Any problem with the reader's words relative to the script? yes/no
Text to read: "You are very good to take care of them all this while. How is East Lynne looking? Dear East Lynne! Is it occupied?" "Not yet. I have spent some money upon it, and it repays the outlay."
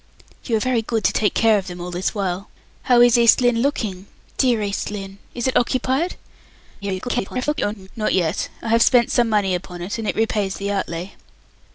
yes